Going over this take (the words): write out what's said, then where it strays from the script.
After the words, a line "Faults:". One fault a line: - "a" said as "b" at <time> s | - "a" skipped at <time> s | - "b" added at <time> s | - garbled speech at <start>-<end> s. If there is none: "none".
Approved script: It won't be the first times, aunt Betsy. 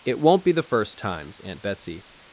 It won't be the first times, aunt Betsy.
Faults:
none